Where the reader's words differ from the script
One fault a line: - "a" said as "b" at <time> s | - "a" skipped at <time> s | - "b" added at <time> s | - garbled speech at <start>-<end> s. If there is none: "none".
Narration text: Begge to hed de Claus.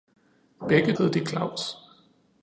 - "to" skipped at 0.9 s